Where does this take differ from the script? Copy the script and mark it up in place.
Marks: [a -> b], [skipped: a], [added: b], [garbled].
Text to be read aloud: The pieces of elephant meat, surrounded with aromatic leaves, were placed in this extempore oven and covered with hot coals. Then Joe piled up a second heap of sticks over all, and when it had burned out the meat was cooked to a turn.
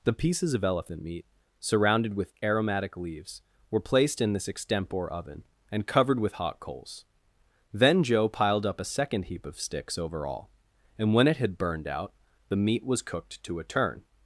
The pieces of elephant meat, surrounded with aromatic leaves, were placed in this extempore oven and covered with hot coals. Then Joe piled up a second heap of sticks over all, and when it had burned out the meat was cooked to a turn.